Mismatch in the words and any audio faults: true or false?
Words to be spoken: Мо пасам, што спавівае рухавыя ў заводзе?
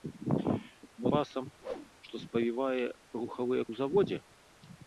true